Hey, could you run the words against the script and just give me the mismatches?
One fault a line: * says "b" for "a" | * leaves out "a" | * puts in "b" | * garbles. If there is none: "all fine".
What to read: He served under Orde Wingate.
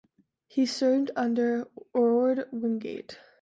all fine